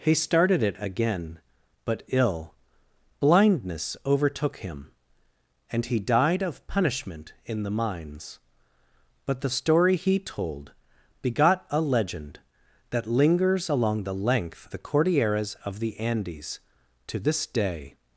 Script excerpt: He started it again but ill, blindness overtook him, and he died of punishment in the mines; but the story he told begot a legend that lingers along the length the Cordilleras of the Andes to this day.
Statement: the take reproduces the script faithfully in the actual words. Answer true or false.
true